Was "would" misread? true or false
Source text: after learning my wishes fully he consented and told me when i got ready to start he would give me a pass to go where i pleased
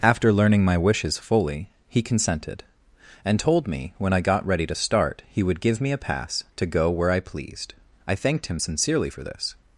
false